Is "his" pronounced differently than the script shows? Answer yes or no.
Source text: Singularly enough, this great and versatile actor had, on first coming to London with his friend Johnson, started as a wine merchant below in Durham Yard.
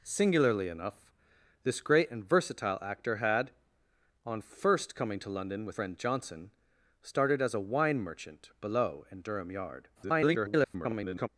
yes